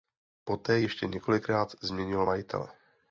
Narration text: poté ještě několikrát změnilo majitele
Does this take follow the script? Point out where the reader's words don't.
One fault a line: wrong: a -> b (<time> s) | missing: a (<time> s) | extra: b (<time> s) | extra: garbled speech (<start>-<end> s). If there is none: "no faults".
no faults